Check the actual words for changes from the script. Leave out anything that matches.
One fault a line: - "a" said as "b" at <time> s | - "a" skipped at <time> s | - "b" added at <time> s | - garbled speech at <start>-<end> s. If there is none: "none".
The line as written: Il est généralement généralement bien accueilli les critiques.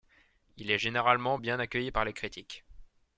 - "généralement" skipped at 1.4 s
- "par" added at 1.9 s